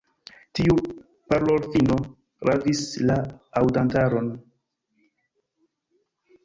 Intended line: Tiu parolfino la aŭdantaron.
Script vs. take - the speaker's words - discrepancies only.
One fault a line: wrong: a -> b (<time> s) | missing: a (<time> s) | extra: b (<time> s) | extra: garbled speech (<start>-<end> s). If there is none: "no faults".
extra: ravis (2.5 s)